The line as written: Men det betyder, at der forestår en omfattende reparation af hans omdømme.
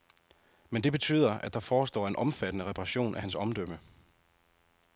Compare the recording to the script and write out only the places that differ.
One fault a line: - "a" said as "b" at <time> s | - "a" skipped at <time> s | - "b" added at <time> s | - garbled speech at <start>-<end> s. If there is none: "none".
none